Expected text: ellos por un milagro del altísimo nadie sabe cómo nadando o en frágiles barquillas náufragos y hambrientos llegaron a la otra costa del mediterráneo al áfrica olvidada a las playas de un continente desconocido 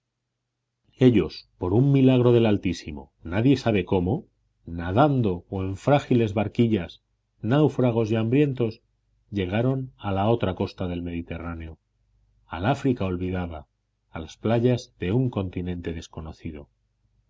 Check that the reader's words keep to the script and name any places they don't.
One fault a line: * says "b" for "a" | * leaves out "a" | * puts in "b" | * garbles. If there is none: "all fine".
all fine